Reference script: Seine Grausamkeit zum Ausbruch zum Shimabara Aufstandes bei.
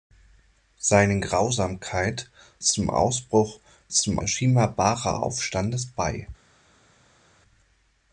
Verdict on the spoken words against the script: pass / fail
pass